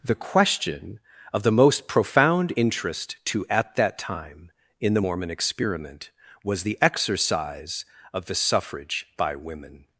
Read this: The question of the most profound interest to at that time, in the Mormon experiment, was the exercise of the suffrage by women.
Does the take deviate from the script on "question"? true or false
false